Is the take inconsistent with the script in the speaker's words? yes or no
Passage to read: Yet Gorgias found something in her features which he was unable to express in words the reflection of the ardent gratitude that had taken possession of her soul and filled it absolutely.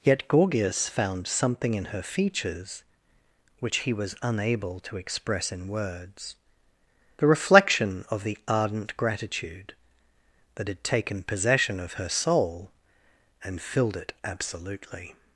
no